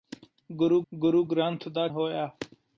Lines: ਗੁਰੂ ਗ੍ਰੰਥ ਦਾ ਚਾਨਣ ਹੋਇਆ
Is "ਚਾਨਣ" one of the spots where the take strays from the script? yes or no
yes